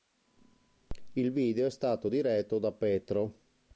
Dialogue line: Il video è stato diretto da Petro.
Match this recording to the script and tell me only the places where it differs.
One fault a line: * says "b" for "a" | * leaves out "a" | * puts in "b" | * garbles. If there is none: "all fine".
all fine